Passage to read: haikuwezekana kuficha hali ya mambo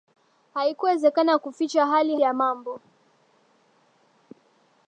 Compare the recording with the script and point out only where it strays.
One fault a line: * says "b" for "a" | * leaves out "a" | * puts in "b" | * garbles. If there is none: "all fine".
all fine